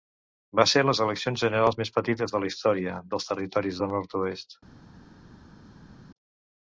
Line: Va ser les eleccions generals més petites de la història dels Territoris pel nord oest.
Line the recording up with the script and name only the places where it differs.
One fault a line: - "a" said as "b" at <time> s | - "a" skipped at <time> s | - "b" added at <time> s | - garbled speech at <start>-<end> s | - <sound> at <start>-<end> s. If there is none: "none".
- "pel" said as "del" at 3.8 s